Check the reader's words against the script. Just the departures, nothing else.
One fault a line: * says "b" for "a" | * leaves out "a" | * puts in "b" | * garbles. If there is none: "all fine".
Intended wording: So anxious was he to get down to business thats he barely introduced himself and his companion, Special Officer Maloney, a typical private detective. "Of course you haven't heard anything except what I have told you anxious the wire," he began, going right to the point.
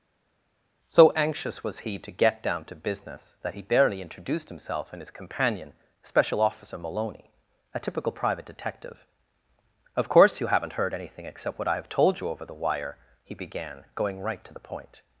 * says "that" for "thats"
* says "over" for "anxious"